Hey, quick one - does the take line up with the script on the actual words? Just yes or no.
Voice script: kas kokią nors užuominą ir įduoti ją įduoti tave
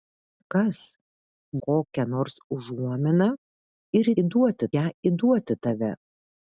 yes